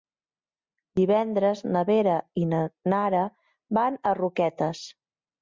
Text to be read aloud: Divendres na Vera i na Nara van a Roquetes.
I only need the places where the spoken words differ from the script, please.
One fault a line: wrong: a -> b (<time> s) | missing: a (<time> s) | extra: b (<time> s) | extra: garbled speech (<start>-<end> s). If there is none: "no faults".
no faults